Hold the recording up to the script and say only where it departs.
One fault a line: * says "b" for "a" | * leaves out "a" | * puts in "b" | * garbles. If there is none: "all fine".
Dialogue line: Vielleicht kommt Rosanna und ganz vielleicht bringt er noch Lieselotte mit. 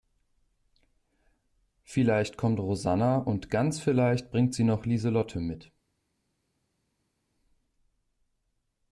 * says "sie" for "er"